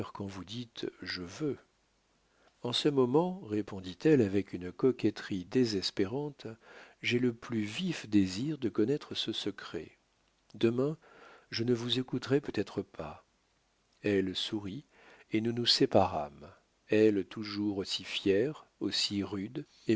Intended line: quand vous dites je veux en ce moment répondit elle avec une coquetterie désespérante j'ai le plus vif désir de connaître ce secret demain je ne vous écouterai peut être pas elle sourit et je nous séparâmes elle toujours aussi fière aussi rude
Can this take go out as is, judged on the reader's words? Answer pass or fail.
fail